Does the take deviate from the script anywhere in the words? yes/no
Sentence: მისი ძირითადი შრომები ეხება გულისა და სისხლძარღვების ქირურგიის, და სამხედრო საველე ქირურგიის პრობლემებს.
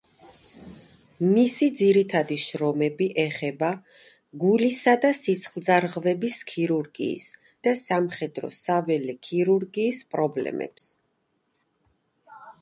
no